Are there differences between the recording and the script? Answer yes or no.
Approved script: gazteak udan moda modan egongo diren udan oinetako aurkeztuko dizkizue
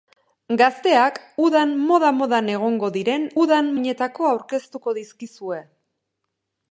no